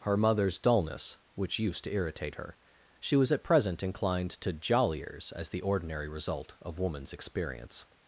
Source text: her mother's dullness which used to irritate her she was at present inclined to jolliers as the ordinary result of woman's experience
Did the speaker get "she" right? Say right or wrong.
right